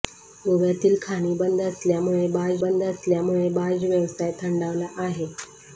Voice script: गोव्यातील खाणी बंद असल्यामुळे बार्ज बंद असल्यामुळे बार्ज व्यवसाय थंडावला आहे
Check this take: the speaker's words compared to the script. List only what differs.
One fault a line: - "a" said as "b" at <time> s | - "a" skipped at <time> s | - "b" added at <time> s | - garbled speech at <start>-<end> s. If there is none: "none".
none